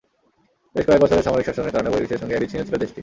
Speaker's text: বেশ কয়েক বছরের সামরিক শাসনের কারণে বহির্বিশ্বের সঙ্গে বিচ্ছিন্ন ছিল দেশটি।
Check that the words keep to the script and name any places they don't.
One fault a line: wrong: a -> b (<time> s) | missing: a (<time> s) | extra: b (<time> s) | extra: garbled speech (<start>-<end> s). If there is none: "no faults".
no faults